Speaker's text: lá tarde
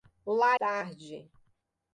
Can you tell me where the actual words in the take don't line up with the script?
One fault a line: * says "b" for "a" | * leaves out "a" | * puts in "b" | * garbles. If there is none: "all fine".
all fine